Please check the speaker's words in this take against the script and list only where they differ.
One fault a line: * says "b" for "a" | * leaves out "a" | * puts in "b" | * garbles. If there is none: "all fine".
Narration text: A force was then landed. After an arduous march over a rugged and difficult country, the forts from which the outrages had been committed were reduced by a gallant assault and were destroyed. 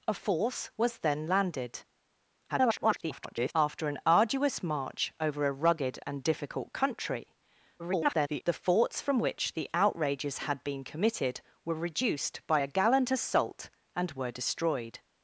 * garbles
* garbles